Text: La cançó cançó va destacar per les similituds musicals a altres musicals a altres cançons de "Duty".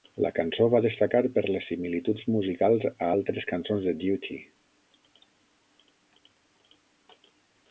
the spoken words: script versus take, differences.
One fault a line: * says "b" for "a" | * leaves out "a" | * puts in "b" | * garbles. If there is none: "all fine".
* leaves out "cançó"
* leaves out "musicals a altres"